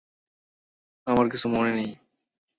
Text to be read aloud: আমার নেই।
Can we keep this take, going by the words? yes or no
no